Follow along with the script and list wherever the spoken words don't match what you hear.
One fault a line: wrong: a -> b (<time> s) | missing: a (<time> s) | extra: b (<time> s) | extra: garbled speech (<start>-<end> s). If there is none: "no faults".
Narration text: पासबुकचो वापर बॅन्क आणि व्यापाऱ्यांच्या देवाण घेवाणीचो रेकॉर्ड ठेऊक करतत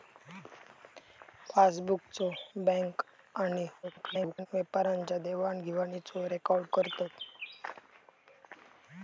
missing: वापर (2.3 s)
extra: garbled speech (3.8-4.5 s)
missing: ठेऊक (6.6 s)